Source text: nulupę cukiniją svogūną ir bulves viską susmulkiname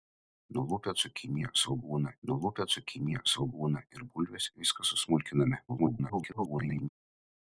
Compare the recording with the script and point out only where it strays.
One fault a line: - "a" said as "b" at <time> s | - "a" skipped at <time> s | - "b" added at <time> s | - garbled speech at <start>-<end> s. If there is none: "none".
- "nulupę cukiniją svogūną" added at 2.3 s
- garbled speech at 5.7-6.9 s